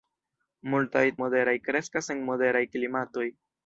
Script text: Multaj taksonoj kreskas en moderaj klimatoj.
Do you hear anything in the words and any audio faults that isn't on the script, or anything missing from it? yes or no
yes